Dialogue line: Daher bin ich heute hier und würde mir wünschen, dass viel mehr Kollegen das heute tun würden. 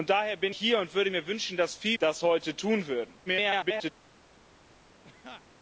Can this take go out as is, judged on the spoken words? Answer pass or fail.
fail